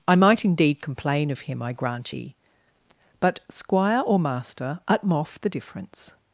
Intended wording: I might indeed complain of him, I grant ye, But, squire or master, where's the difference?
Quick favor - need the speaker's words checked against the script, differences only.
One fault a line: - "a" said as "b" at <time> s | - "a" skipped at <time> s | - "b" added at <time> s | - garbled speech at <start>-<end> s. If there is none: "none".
- "where's" said as "utmoff" at 4.9 s